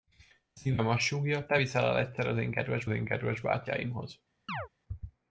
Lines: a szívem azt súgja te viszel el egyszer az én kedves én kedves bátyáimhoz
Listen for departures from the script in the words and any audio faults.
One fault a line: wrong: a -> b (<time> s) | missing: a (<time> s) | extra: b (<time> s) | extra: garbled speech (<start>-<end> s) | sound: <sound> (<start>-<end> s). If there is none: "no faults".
sound: chirp (4.5-4.7 s)